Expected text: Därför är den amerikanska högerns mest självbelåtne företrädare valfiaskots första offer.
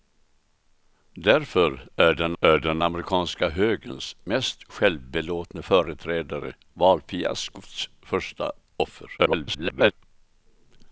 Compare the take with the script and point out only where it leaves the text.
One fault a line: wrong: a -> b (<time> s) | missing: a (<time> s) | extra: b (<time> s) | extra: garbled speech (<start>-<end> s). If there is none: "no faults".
extra: är den (2.4 s)
extra: garbled speech (9.2-9.9 s)